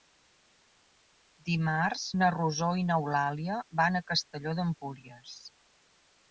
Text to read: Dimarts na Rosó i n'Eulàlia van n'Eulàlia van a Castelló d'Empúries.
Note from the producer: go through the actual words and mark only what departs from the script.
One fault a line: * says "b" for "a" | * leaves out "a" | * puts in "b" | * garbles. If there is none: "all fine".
* leaves out "n'Eulàlia van"